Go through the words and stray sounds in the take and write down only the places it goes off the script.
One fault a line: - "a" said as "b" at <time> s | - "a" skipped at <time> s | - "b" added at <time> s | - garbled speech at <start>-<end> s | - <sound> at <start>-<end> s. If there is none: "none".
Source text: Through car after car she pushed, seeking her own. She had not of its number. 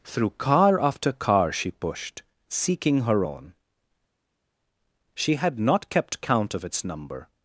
- "kept count" added at 5.9 s